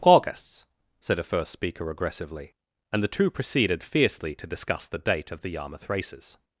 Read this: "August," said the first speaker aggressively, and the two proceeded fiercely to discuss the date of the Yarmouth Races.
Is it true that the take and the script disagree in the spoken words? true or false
true